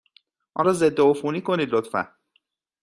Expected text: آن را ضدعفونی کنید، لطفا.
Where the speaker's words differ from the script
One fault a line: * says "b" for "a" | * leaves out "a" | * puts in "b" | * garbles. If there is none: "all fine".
all fine